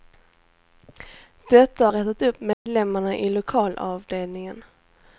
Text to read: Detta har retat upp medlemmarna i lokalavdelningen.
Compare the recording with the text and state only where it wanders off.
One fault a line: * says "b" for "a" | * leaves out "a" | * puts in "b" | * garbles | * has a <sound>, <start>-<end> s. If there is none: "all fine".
* has a dropout, 2.5-2.7 s